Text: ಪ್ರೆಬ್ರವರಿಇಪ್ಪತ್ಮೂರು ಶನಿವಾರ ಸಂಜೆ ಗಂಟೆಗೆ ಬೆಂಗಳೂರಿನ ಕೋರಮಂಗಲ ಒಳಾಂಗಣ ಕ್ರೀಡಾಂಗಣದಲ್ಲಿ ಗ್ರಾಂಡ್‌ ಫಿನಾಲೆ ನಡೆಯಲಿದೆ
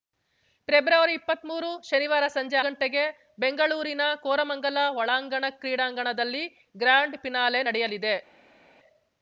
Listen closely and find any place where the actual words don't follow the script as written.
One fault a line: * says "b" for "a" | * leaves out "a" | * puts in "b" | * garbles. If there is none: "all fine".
all fine